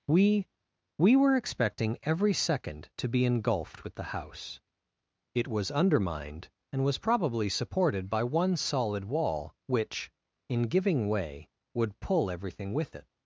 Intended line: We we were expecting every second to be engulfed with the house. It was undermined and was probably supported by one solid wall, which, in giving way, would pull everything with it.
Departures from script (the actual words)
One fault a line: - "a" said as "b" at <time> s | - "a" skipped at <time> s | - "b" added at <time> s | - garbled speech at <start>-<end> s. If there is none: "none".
none